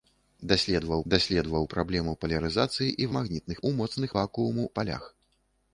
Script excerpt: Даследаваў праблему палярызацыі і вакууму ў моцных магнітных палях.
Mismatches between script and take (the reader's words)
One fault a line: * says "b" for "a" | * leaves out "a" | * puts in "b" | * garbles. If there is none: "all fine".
* puts in "даследаваў"
* says "магнітных" for "вакууму"
* says "вакууму" for "магнітных"